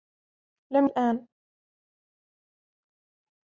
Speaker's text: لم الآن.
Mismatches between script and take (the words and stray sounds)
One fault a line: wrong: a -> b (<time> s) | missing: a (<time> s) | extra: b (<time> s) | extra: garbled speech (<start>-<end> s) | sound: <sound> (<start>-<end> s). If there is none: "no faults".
no faults